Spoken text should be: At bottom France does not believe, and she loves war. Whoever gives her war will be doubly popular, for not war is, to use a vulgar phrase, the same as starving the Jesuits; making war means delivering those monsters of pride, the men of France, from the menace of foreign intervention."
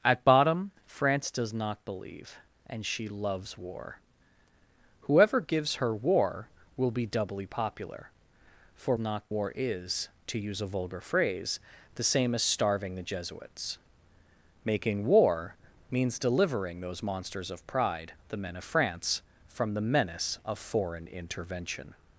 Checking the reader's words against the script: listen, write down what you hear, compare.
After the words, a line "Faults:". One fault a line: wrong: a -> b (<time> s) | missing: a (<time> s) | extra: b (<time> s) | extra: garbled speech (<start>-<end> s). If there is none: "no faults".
At bottom France does not believe, and she loves war. Whoever gives her war will be doubly popular, for not war is, to use a vulgar phrase, the same as starving the Jesuits; making war means delivering those monsters of pride, the men of France, from the menace of foreign intervention."
Faults:
no faults